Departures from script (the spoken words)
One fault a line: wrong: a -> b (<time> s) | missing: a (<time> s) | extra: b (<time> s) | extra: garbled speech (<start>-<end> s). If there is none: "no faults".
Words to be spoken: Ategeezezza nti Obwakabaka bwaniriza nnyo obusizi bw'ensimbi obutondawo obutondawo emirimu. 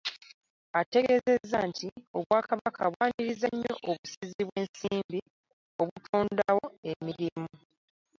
missing: obutondawo (6.7 s)